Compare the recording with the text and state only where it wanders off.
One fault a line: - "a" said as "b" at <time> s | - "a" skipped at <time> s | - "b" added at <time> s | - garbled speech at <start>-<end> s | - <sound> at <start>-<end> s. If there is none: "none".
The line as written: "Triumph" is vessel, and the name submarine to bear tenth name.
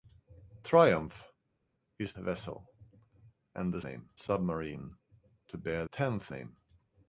none